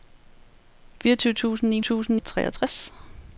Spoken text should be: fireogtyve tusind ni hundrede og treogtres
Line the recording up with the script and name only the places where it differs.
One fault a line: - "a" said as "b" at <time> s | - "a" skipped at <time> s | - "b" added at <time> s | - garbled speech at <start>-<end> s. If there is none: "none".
- "hundrede" said as "tusind" at 1.8 s